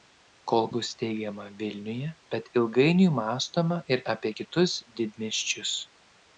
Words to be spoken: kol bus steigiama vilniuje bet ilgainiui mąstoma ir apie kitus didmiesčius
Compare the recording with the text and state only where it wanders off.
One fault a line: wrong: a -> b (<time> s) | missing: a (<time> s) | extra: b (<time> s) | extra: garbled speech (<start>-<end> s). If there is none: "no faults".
no faults